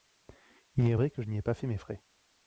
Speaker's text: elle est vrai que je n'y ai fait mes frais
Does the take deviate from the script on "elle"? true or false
true